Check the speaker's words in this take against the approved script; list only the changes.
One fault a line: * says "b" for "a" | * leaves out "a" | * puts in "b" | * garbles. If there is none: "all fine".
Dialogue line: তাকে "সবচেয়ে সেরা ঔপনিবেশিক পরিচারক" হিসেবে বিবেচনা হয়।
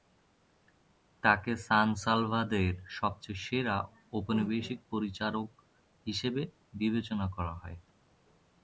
* puts in "সান সালভাদরের"
* puts in "করা"